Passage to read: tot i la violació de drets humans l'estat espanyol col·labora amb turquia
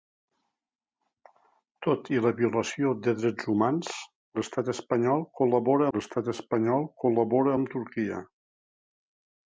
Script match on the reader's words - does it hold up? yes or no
no